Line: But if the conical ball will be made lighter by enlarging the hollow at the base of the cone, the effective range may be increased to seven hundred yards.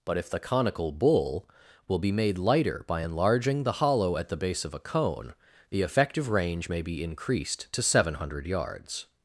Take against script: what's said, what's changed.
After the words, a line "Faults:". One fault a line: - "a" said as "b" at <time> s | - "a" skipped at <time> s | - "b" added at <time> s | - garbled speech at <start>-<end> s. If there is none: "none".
But if the conical bull will be made lighter by enlarging the hollow at the base of a cone, the effective range may be increased to seven hundred yards.
Faults:
- "ball" said as "bull" at 0.9 s
- "the" said as "a" at 4.7 s